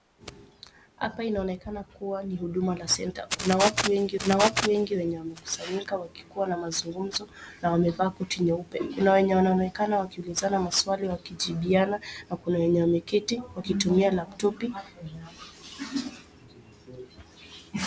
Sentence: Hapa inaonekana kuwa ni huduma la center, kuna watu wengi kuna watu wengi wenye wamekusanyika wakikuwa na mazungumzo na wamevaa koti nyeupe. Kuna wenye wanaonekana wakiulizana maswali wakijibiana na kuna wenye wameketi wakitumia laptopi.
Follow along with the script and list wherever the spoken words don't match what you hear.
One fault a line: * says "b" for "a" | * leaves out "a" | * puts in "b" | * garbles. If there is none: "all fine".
all fine